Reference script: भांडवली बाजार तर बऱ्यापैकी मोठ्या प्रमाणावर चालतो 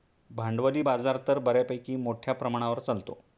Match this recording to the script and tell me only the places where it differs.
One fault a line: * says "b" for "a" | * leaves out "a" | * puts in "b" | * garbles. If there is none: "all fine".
all fine